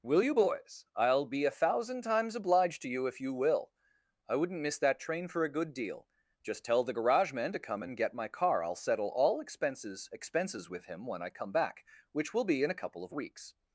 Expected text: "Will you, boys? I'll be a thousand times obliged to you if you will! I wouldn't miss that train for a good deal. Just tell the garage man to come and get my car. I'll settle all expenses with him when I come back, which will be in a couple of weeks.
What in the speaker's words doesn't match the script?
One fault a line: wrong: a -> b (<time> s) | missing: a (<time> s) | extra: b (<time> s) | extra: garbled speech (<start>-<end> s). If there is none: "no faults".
extra: expenses (10.1 s)